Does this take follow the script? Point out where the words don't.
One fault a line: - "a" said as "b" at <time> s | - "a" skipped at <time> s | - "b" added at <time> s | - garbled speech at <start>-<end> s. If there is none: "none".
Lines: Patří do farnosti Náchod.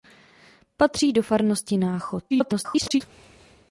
- garbled speech at 2.3-3.0 s